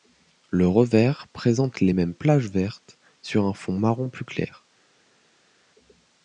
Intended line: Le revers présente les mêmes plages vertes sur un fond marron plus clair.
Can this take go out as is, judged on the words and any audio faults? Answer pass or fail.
pass